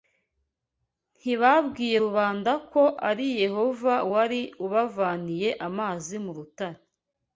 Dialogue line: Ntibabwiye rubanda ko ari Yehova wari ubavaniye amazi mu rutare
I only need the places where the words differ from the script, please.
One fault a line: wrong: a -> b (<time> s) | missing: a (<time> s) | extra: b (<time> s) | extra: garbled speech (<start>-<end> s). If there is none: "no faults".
no faults